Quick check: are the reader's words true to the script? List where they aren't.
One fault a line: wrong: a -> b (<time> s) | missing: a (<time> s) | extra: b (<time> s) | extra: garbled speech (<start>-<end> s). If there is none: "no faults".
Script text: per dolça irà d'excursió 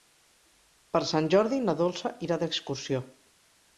extra: sant jordi na (1.1 s)